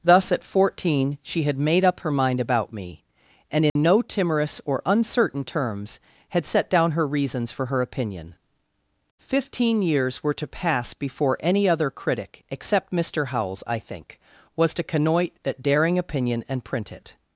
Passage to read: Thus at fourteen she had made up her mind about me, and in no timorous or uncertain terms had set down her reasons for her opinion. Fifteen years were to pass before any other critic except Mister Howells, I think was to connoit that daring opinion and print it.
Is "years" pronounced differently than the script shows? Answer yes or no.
no